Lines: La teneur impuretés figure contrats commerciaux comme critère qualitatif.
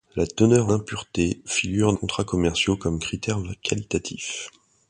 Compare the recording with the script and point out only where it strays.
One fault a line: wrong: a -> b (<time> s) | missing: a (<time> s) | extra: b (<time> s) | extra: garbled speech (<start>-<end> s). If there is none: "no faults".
no faults